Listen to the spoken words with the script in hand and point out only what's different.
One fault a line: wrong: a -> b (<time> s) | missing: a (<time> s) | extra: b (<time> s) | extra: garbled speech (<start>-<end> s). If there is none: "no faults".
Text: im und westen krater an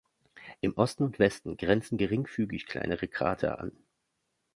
extra: osten (0.8 s)
extra: grenzen geringfügig kleinere (1.6 s)